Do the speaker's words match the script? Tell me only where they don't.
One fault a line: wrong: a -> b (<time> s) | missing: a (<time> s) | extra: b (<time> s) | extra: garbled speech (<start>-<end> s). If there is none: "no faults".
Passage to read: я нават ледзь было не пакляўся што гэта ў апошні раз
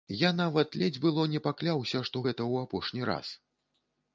no faults